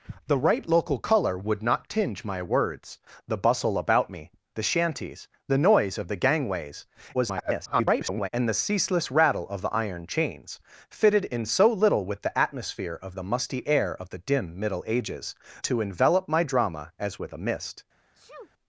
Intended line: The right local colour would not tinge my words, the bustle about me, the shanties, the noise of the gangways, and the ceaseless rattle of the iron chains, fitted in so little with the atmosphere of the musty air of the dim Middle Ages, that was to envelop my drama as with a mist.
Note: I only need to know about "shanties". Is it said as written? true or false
true